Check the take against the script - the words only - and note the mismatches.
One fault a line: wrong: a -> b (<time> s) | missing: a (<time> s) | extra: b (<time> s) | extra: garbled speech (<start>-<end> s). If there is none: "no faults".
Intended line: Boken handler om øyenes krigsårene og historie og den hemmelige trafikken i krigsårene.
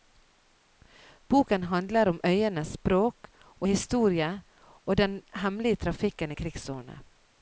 wrong: krigsårene -> språk (2.7 s)